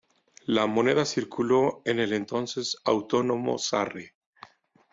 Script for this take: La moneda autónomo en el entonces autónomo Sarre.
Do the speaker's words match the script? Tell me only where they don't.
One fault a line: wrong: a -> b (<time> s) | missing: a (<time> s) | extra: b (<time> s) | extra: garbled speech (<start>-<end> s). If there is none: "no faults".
wrong: autónomo -> circuló (1.1 s)